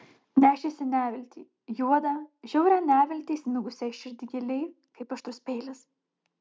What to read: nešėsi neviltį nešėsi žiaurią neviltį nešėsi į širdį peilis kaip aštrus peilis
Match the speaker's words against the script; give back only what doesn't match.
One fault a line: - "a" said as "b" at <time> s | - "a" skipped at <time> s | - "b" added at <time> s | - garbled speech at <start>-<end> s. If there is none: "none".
- "nešėsi" said as "juodą" at 1.8 s
- "nešėsi" said as "įsmigusią" at 3.4 s
- "peilis" said as "giliai" at 4.3 s